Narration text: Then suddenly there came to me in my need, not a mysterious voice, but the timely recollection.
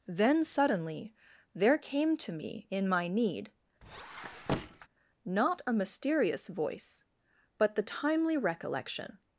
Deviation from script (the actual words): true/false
false